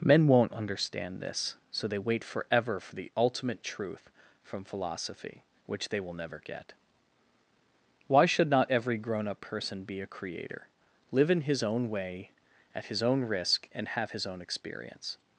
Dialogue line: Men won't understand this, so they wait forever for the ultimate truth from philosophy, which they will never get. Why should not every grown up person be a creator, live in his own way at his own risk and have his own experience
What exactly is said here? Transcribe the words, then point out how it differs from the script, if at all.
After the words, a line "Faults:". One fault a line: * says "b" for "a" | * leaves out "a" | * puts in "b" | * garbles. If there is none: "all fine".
Men won't understand this, so they wait forever for the ultimate truth from philosophy, which they will never get. Why should not every grown up person be a creator, live in his own way at his own risk and have his own experience
Faults:
all fine